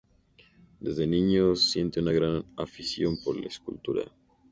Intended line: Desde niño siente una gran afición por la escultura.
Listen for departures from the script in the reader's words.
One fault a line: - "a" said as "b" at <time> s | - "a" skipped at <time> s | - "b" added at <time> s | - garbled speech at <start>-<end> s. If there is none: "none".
none